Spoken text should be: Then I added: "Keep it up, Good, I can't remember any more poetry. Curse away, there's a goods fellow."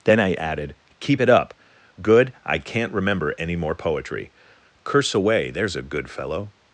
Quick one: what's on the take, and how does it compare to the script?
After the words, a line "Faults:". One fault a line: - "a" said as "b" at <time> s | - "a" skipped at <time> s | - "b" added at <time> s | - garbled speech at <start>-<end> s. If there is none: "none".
Then I added: "Keep it up, Good, I can't remember any more poetry. Curse away, there's a good fellow."
Faults:
- "goods" said as "good" at 5.8 s